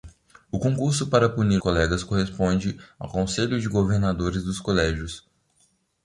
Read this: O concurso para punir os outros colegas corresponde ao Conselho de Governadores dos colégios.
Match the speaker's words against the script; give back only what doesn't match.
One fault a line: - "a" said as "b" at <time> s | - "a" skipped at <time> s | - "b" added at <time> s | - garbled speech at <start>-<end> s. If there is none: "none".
- "os outros" skipped at 1.6 s